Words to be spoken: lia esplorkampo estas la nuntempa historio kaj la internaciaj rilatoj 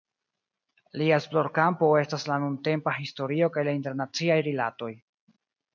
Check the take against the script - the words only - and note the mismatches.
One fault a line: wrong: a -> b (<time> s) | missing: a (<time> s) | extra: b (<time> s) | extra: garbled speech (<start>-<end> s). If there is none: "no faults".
no faults